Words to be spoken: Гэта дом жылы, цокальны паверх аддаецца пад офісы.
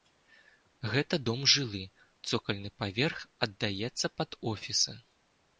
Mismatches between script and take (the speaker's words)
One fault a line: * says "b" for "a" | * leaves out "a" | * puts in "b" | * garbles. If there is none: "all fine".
all fine